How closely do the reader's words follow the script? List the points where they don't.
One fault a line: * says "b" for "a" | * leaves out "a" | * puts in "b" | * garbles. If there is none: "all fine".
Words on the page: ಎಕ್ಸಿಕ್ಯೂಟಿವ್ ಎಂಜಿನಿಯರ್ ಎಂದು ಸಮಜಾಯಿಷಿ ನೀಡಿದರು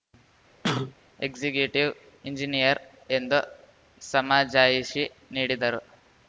all fine